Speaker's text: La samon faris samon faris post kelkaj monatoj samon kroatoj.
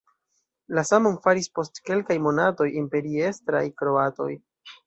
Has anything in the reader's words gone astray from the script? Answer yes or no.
yes